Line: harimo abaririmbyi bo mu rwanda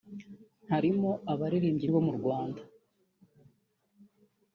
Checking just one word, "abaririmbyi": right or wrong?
right